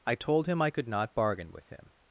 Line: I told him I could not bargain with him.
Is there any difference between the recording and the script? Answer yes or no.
no